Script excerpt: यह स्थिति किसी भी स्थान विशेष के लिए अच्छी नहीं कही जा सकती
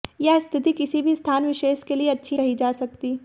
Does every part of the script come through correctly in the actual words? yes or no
no